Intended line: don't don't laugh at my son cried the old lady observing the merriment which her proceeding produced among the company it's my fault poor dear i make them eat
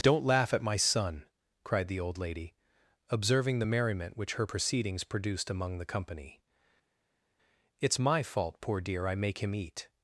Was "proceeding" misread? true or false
true